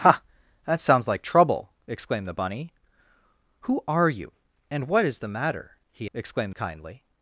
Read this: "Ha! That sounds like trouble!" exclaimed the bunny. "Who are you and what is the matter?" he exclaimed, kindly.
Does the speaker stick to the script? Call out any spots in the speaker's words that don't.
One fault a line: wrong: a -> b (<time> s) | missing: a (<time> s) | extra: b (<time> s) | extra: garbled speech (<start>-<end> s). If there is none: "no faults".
no faults